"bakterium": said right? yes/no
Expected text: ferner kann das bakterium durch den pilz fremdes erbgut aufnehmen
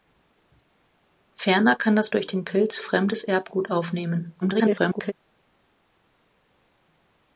no